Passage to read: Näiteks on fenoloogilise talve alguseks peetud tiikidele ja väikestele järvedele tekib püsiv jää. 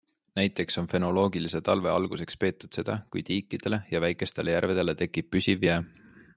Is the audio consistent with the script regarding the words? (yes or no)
no